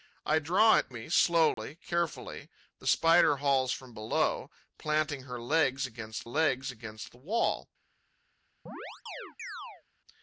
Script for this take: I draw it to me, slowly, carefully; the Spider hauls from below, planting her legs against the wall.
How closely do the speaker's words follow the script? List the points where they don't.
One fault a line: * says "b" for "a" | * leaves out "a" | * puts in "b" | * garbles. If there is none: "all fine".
* leaves out "to"
* puts in "legs against"